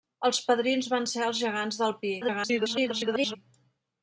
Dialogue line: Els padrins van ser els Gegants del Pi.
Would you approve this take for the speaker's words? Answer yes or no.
no